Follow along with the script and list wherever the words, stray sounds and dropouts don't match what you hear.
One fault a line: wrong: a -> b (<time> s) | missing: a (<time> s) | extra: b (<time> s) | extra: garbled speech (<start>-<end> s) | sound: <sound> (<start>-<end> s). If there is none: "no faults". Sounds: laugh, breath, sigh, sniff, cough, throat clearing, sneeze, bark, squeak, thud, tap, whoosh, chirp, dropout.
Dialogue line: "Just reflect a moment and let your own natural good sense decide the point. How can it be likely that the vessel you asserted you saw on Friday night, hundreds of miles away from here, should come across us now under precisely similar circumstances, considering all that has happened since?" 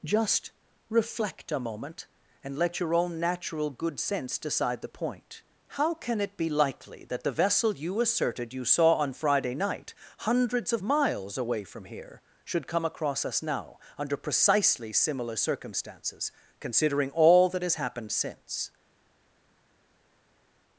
no faults